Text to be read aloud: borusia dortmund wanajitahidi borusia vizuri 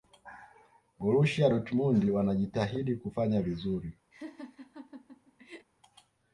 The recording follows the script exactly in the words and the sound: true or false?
false